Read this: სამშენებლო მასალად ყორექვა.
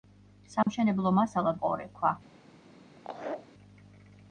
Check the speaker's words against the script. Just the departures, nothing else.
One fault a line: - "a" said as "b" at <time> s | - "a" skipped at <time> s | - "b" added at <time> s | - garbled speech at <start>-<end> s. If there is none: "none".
none